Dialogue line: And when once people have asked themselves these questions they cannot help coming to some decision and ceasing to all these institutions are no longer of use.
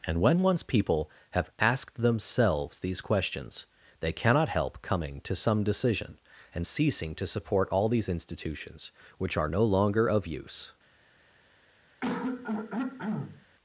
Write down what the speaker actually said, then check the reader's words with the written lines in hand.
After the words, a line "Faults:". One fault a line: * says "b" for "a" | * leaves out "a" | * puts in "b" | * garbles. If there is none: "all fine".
And when once people have asked themselves these questions they cannot help coming to some decision and ceasing to support all these institutions which are no longer of use.
Faults:
* puts in "support"
* puts in "which"